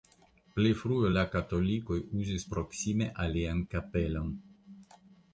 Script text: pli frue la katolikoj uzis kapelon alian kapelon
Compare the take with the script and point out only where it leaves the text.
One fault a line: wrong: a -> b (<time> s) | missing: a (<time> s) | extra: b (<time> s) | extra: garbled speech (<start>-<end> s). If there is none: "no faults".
wrong: kapelon -> proksime (2.5 s)